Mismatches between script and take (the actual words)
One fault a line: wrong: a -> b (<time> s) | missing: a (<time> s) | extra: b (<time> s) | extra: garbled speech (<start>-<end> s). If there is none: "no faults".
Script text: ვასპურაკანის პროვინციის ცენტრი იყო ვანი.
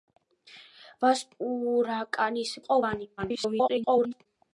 missing: პროვინციის ცენტრი (2.5 s)
extra: garbled speech (3.2-4.3 s)